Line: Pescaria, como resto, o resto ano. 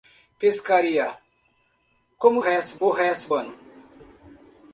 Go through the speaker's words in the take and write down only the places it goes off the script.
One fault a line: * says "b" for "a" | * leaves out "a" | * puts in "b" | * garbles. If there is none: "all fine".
all fine